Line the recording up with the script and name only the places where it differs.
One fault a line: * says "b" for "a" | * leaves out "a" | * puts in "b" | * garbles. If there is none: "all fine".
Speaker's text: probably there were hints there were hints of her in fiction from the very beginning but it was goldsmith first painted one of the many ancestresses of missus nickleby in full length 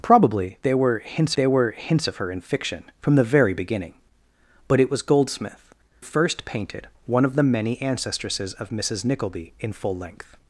all fine